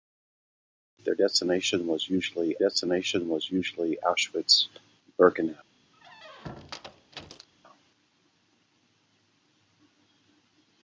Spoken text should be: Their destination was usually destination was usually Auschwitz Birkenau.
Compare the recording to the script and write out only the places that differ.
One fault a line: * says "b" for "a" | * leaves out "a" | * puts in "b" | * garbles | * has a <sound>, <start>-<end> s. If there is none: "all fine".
* has a squeak, 5.9-7.5 s